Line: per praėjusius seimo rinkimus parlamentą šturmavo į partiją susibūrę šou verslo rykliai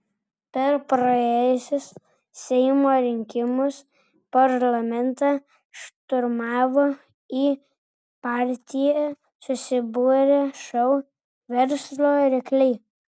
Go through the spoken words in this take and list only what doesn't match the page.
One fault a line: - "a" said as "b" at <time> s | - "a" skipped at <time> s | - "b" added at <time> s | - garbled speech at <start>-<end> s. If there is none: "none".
none